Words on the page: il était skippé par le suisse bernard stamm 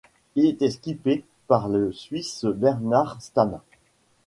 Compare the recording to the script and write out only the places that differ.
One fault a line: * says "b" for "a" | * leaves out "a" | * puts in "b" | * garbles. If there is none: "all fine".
all fine